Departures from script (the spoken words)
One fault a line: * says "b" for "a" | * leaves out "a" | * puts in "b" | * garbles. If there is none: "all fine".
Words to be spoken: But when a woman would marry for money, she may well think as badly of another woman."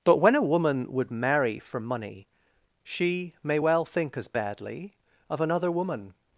all fine